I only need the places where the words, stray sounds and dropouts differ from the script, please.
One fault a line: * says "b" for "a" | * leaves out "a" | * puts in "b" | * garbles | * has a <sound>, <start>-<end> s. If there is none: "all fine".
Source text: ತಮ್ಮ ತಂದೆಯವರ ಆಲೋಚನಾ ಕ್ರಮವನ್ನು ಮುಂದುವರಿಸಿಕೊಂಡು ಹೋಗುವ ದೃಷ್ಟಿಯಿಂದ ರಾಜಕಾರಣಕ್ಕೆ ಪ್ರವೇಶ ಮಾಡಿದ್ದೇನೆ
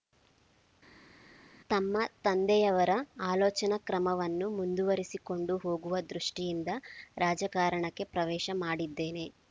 all fine